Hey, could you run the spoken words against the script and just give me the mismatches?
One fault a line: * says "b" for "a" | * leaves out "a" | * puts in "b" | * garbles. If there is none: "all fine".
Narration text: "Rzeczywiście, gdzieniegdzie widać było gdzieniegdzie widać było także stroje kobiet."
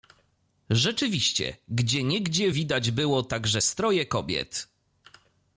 * leaves out "gdzieniegdzie widać było"